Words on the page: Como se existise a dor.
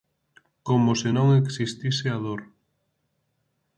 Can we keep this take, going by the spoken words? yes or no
no